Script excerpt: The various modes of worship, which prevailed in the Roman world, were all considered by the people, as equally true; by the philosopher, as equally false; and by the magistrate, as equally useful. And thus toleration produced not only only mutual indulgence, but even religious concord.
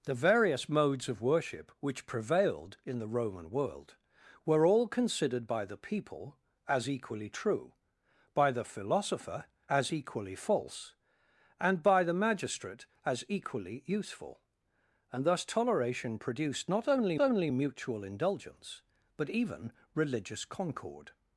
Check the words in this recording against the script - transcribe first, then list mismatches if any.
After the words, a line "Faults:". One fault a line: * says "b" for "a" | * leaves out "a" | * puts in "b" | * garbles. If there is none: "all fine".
The various modes of worship, which prevailed in the Roman world, were all considered by the people, as equally true; by the philosopher, as equally false; and by the magistrate, as equally useful. And thus toleration produced not only only mutual indulgence, but even religious concord.
Faults:
all fine